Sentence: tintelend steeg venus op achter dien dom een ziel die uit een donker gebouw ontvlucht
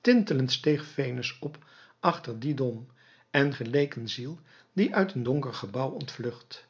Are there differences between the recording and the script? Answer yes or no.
yes